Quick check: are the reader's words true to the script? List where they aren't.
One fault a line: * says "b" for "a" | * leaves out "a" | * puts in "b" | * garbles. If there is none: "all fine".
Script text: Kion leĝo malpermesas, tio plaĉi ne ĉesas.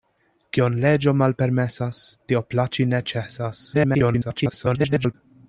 * garbles